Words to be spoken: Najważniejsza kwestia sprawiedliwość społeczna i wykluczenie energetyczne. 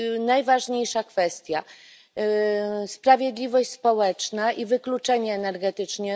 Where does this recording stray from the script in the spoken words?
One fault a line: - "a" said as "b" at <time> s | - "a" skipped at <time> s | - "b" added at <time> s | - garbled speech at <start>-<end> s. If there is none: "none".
none